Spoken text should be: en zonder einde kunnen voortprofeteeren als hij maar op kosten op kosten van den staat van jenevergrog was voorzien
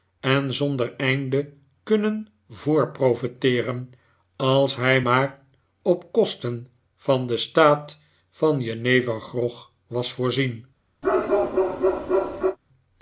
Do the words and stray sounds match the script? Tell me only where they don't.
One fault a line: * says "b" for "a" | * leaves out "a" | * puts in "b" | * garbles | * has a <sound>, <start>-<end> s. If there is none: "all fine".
* leaves out "op kosten"
* has a bark, 11.0-12.6 s